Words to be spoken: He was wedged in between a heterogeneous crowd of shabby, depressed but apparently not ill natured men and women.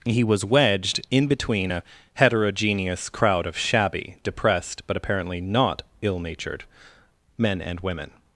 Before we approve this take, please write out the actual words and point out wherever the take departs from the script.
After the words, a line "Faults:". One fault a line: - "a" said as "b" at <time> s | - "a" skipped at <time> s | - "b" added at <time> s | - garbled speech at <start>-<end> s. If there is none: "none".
He was wedged in between a heterogeneous crowd of shabby, depressed but apparently not ill natured men and women.
Faults:
none